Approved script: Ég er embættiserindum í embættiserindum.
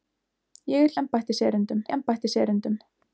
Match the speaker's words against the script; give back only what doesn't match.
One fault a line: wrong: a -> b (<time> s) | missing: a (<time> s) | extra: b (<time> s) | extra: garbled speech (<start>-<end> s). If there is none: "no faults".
no faults